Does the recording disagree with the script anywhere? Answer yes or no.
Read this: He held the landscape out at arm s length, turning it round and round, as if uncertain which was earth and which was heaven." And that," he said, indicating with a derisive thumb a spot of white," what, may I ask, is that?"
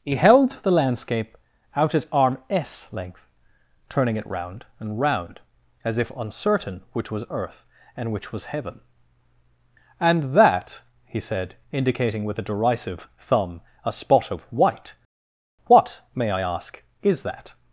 no